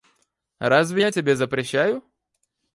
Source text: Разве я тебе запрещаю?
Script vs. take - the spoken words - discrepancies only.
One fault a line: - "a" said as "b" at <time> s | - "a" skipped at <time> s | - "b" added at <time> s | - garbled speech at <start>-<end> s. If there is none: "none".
none